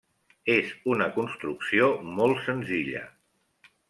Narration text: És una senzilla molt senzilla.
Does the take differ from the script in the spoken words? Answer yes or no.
yes